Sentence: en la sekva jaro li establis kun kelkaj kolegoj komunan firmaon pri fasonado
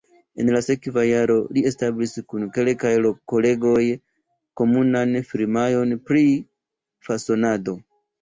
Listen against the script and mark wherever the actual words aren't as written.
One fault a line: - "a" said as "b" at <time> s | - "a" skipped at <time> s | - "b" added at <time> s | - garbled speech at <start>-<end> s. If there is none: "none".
none